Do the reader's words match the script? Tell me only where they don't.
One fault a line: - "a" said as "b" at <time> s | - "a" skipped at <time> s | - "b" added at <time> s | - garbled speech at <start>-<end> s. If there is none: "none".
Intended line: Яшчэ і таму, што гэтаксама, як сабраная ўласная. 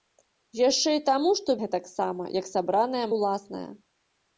none